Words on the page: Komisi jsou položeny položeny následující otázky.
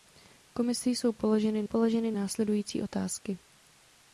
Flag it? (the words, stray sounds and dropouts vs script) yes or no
no